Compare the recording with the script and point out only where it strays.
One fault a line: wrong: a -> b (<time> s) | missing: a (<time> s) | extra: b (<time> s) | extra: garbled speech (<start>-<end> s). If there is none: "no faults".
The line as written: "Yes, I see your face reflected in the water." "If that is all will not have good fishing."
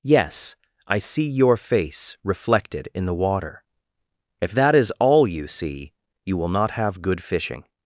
extra: you see you (5.3 s)